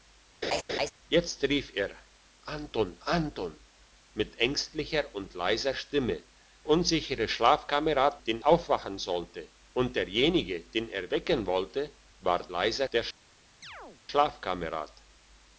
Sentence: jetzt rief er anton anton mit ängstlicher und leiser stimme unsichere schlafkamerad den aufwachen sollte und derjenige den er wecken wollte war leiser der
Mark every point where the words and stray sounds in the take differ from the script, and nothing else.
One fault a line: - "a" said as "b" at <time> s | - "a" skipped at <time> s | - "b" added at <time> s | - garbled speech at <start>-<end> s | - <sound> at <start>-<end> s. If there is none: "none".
- laugh at 0.4-0.9 s
- chirp at 13.6-14.0 s